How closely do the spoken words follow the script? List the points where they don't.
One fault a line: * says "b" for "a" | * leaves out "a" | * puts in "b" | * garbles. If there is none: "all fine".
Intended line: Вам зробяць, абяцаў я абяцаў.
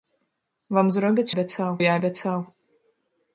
all fine